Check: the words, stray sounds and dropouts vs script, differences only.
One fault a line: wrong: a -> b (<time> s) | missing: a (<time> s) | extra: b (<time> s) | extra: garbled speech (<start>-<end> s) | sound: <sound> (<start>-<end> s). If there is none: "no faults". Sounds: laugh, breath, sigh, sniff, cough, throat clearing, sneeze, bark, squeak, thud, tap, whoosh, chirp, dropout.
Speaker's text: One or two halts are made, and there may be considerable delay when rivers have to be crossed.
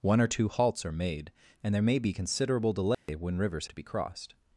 sound: dropout (2.9-3.1 s)
missing: have (3.7 s)